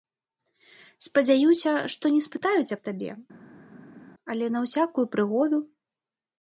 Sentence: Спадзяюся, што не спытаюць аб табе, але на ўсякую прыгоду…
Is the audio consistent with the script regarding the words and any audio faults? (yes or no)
yes